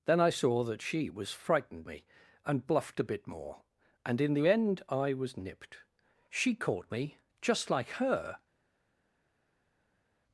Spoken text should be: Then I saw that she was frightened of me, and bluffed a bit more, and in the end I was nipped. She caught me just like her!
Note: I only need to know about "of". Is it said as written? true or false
false